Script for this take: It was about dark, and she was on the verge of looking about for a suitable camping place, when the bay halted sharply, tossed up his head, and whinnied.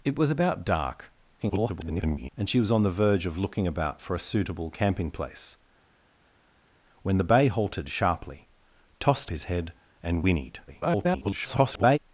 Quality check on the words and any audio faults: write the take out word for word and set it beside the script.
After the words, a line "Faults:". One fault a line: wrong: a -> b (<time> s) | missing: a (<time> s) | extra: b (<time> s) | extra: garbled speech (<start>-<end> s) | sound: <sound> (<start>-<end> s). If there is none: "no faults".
It was about dark, [garbled] and she was on the verge of looking about for a suitable camping place, when the bay halted sharply, tossed his head, and whinnied. [garbled]
Faults:
extra: garbled speech (1.4-2.3 s)
missing: up (9.3 s)
extra: garbled speech (10.7-12.0 s)